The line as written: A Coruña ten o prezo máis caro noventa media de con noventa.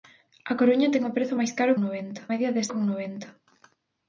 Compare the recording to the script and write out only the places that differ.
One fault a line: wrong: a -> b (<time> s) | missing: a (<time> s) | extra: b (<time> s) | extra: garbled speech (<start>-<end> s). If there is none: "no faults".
no faults